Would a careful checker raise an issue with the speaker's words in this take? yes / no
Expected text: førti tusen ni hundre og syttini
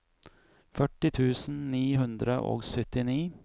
no